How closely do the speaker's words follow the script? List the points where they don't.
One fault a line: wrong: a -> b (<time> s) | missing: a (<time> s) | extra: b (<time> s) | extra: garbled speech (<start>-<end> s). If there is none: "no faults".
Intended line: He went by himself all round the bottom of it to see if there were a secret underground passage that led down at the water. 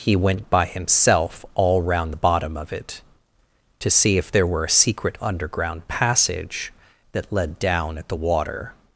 no faults